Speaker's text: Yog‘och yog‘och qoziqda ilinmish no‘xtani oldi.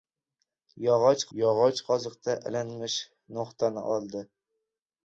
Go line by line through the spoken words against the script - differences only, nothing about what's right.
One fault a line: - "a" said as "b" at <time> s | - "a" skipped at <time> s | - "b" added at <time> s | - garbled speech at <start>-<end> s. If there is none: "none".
none